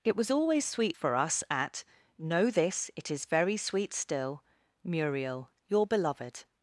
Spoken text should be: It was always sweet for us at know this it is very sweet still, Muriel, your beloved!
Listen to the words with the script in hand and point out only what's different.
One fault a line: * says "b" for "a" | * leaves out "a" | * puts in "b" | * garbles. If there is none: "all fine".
all fine